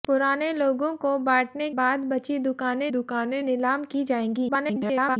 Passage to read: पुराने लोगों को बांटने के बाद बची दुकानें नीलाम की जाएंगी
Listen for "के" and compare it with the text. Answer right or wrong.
wrong